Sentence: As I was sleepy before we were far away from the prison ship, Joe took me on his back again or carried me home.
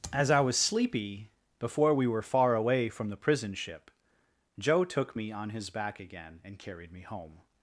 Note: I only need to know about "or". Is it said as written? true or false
false